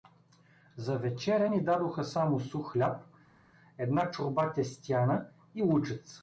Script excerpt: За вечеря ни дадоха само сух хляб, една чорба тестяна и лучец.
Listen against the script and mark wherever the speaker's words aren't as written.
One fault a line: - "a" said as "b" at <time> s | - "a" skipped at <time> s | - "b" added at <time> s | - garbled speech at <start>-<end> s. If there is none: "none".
none